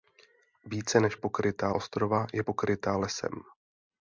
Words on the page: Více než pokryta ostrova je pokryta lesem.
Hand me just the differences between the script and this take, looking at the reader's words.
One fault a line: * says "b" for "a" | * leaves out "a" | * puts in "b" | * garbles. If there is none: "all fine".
all fine